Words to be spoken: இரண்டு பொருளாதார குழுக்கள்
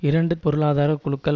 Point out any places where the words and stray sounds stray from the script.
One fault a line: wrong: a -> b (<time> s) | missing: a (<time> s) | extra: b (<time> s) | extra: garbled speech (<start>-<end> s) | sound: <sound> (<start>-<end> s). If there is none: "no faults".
no faults